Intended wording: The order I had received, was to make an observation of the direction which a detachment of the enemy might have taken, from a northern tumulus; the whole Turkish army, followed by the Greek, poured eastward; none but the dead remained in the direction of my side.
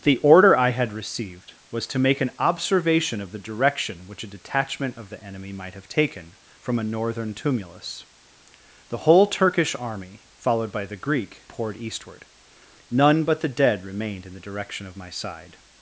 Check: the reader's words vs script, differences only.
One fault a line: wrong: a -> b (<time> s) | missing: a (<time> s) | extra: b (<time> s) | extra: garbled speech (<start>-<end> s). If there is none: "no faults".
no faults